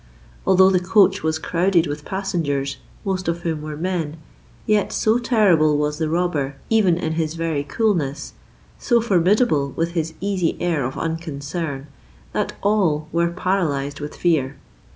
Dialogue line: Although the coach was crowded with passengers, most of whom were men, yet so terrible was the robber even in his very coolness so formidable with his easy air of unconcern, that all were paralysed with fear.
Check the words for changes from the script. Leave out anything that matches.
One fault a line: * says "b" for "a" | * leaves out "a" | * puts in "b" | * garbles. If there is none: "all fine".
all fine